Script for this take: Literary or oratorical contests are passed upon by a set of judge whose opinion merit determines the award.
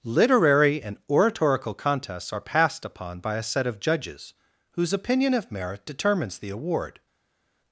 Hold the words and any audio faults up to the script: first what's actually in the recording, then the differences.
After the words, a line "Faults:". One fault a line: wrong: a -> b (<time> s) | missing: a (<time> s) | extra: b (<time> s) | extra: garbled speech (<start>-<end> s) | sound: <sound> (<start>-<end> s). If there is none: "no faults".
Literary and oratorical contests are passed upon by a set of judges whose opinion of merit determines the award.
Faults:
wrong: or -> and (0.8 s)
wrong: judge -> judges (3.8 s)
extra: of (5.3 s)